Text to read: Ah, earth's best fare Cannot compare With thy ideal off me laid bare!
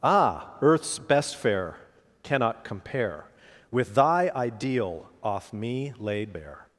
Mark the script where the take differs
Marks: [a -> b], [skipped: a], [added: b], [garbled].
Ah, earth's best fare Cannot compare With thy ideal off me laid bare!